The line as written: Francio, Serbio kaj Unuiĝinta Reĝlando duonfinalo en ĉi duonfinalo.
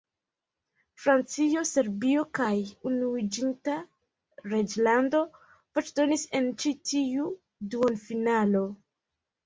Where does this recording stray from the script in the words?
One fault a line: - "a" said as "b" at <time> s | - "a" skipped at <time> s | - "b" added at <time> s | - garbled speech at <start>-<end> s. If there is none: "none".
- "duonfinalo" said as "voĉdonis" at 5.8 s
- "tiu" added at 6.9 s